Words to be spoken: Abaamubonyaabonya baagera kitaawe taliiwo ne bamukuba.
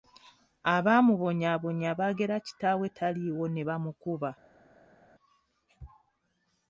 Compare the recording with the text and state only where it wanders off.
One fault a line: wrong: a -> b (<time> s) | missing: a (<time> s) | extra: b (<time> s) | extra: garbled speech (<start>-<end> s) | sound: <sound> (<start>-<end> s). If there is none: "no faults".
no faults